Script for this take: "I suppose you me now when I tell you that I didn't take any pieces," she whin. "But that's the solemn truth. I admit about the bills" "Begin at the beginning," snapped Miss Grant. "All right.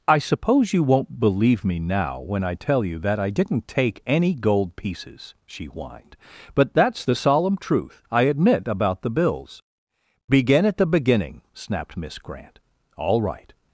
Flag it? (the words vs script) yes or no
yes